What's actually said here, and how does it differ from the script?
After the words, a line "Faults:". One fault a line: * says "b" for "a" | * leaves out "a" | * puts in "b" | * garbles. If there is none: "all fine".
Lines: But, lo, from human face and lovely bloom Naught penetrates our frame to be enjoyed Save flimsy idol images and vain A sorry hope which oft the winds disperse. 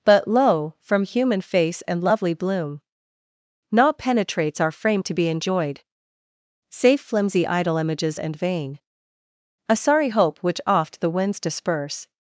But, lo, from human face and lovely bloom Naught penetrates our frame to be enjoyed Save flimsy idol images and vain A sorry hope which oft the winds disperse.
Faults:
all fine